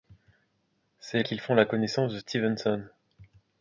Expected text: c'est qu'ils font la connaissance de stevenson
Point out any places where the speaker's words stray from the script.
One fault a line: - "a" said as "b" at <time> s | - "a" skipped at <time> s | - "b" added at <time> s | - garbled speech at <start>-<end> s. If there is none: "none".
none